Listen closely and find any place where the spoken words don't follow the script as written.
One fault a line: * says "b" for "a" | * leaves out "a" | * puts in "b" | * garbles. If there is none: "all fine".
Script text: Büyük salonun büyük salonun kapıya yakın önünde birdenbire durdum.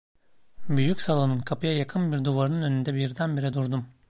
* says "kapıya yakın bir duvarının" for "büyük salonun kapıya yakın"